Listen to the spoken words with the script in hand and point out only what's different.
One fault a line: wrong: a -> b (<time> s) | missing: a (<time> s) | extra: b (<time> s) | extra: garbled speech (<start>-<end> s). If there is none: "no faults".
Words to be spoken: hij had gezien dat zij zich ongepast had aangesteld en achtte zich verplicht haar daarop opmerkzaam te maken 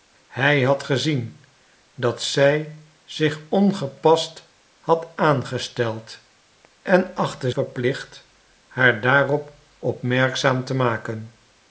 missing: zich (7.5 s)